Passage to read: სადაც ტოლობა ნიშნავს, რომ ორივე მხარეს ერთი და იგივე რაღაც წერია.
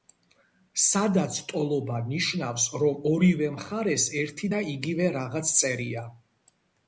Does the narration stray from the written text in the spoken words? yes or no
no